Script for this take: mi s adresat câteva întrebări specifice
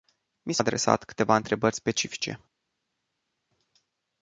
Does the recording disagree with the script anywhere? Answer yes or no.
no